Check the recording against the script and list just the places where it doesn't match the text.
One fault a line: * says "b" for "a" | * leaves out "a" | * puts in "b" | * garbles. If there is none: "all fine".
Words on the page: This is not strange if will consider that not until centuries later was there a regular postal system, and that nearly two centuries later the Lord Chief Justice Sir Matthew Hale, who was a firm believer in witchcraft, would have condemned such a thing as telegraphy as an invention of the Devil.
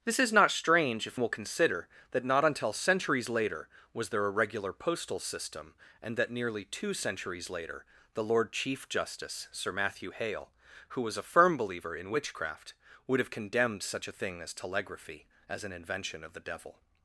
all fine